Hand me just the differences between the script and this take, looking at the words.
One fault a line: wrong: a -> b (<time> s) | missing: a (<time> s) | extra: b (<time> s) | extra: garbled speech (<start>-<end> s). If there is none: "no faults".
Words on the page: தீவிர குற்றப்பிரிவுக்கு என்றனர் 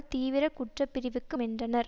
no faults